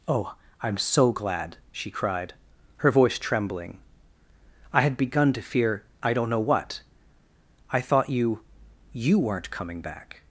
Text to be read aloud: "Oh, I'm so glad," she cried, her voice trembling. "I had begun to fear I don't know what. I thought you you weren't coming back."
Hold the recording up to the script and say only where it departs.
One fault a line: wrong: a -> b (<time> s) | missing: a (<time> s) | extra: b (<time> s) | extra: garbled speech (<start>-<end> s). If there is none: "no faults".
no faults